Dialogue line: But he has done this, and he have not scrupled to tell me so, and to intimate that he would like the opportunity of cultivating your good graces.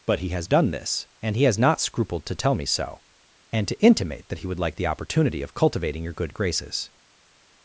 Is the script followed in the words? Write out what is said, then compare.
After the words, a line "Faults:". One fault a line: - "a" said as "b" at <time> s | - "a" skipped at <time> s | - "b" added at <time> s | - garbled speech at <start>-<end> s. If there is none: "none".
But he has done this, and he has not scrupled to tell me so, and to intimate that he would like the opportunity of cultivating your good graces.
Faults:
- "have" said as "has" at 1.4 s